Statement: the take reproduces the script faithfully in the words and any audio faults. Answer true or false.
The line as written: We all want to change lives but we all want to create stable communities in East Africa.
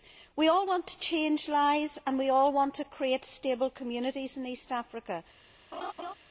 false